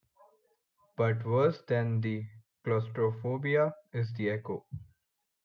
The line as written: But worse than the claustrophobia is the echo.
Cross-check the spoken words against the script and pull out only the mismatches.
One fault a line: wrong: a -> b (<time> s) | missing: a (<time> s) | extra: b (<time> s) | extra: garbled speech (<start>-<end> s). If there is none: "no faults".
no faults